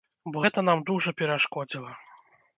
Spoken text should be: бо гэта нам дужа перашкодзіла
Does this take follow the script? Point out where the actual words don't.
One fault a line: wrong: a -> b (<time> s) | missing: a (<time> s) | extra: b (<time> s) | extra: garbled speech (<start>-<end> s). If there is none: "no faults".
no faults